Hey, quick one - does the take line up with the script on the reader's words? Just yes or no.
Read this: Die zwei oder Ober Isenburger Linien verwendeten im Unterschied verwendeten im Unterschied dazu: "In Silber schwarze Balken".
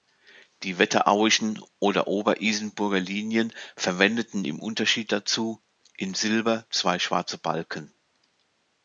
no